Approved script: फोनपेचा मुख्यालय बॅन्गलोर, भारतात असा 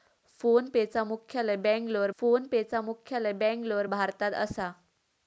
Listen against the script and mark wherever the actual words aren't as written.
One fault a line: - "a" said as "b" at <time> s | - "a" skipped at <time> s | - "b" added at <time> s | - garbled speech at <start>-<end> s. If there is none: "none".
- "फोनपेचा मुख्यालय बॅन्गलोर" added at 2.2 s